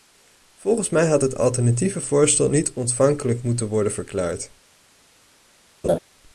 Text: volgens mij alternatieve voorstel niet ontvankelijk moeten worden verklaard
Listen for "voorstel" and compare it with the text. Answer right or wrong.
right